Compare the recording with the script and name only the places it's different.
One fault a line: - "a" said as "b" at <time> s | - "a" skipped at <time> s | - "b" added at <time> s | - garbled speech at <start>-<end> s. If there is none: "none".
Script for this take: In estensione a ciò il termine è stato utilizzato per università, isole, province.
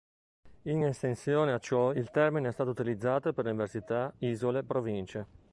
none